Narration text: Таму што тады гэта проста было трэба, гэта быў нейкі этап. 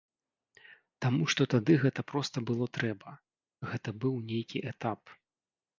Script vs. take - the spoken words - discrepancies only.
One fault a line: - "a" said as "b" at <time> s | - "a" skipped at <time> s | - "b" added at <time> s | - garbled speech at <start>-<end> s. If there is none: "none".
none